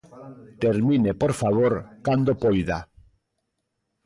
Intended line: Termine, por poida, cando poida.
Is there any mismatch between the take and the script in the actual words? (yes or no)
yes